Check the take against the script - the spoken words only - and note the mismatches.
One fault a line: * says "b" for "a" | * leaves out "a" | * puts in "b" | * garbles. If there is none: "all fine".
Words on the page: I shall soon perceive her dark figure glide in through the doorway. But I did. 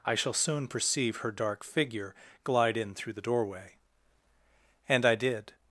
* says "And" for "But"